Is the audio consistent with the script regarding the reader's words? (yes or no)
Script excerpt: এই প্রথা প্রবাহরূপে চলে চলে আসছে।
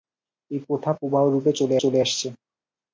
yes